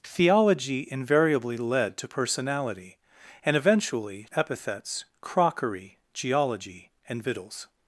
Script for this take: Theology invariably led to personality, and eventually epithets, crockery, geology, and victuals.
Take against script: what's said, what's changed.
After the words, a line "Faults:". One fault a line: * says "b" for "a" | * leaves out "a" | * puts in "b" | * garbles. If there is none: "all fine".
Theology invariably led to personality, and eventually epithets, crockery, geology, and victuals.
Faults:
all fine